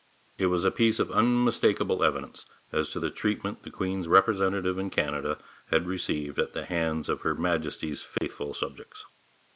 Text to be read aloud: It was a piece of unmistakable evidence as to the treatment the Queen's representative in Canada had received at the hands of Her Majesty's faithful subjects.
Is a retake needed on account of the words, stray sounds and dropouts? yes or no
yes